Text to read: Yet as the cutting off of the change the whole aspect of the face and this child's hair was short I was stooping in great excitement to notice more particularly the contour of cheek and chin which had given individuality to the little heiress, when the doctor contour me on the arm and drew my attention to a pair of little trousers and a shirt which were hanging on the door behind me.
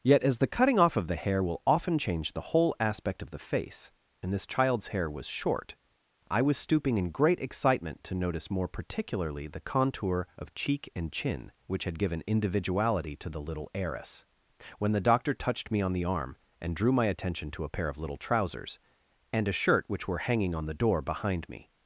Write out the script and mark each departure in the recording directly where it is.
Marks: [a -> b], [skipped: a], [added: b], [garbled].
Yet as the cutting off of the [added: hair will often] change the whole aspect of the face and this child's hair was short I was stooping in great excitement to notice more particularly the contour of cheek and chin which had given individuality to the little heiress, when the doctor [contour -> touched] me on the arm and drew my attention to a pair of little trousers and a shirt which were hanging on the door behind me.